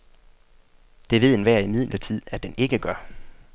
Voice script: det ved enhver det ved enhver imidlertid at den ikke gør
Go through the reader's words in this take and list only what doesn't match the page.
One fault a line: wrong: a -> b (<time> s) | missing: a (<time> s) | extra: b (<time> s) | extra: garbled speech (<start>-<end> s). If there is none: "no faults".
missing: det ved enhver (1.6 s)